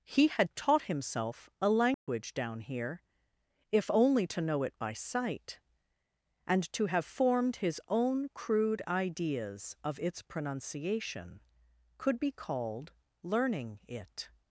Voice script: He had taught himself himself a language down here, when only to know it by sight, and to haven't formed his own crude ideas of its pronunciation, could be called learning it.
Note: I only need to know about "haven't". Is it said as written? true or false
false